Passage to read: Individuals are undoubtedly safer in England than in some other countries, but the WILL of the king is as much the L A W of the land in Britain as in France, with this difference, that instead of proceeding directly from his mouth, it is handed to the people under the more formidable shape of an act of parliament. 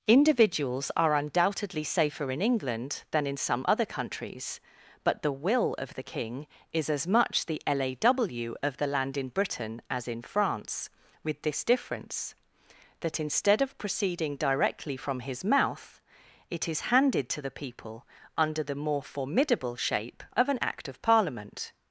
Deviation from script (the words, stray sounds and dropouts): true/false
false